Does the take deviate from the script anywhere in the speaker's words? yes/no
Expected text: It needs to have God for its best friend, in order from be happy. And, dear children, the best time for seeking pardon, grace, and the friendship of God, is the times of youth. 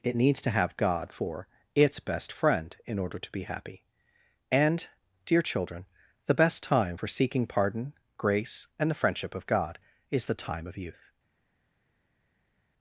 yes